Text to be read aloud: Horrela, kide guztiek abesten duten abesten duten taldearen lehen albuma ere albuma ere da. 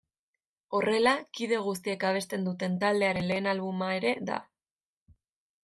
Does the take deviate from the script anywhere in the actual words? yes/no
yes